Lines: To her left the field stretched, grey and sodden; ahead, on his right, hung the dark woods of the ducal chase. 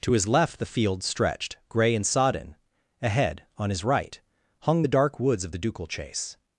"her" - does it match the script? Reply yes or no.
no